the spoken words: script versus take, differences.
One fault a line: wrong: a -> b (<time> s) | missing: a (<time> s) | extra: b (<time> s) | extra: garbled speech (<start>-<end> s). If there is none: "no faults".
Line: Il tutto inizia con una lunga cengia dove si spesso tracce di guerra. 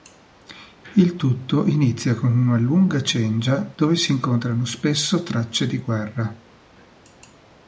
extra: incontrano (4.1 s)